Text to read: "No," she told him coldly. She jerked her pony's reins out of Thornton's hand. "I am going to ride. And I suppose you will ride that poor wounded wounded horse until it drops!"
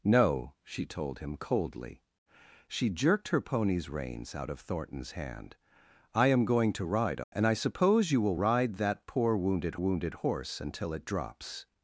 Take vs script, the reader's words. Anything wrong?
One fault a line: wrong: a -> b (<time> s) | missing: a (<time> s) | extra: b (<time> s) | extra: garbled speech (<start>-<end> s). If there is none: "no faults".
no faults